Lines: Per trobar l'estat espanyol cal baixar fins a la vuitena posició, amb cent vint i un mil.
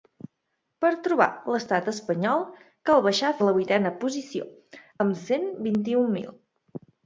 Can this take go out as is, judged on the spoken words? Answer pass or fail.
fail